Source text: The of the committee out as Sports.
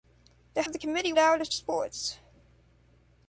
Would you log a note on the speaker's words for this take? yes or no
no